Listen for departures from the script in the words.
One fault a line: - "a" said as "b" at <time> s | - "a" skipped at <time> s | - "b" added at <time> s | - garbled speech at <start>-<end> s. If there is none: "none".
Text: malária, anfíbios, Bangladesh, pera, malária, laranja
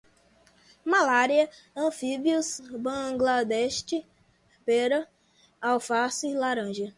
- "malária" said as "alface" at 5.6 s